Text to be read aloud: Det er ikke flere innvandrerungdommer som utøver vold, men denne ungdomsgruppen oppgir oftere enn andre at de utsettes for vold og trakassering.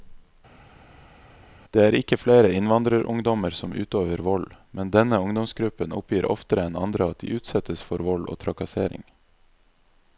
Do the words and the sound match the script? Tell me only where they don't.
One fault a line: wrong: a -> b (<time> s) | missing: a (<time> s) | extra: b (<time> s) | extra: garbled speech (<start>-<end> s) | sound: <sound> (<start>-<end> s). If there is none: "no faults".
no faults